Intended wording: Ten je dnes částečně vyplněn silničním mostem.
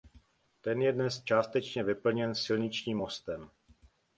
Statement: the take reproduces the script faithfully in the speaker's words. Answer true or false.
true